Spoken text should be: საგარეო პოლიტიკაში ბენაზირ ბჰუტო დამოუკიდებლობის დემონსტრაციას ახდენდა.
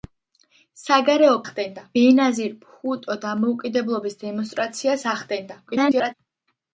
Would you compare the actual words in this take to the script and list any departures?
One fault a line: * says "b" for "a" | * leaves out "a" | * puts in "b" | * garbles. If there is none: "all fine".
* says "ახდენდა" for "პოლიტიკაში"
* garbles